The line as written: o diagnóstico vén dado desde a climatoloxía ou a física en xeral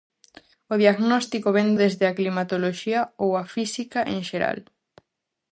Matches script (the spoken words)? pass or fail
fail